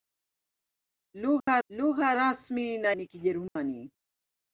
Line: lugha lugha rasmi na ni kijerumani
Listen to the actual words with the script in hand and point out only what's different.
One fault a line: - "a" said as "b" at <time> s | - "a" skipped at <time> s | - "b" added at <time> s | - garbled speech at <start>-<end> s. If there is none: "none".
none